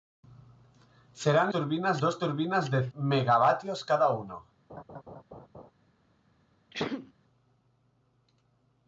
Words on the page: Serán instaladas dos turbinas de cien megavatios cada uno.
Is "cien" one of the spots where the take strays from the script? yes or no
yes